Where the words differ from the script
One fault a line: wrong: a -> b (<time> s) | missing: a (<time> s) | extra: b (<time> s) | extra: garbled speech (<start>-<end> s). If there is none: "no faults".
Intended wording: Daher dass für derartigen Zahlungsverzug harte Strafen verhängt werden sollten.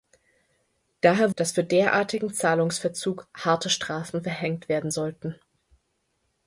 no faults